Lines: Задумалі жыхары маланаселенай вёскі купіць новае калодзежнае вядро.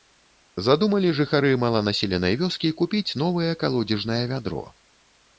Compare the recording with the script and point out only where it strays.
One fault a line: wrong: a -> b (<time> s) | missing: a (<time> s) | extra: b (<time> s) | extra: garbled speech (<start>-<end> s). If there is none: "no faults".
no faults